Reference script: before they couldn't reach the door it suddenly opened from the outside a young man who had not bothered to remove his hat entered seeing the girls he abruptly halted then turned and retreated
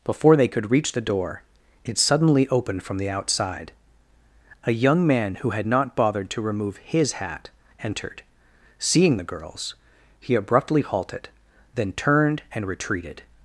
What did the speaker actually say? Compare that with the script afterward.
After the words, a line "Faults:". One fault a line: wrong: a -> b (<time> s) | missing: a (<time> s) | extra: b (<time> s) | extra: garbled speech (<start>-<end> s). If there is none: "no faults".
before they could reach the door it suddenly opened from the outside a young man who had not bothered to remove his hat entered seeing the girls he abruptly halted then turned and retreated
Faults:
wrong: couldn't -> could (0.5 s)